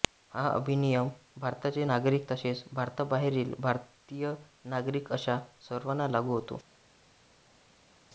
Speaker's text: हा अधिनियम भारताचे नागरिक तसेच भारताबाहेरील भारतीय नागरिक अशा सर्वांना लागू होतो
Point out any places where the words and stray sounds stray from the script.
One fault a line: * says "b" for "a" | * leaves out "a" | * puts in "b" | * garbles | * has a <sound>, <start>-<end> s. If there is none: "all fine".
all fine